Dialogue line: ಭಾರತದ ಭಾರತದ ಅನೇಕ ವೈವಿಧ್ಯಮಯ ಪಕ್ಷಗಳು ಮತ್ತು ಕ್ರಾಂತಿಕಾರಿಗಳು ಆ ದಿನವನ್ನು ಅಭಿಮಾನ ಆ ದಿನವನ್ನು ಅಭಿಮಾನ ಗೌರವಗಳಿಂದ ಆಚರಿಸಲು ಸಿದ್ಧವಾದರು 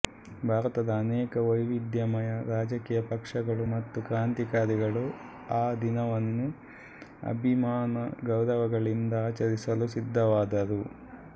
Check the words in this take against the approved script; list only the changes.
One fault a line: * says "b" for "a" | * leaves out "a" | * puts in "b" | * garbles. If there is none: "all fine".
* leaves out "ಭಾರತದ"
* puts in "ರಾಜಕೀಯ"
* leaves out "ಆ ದಿನವನ್ನು ಅಭಿಮಾನ"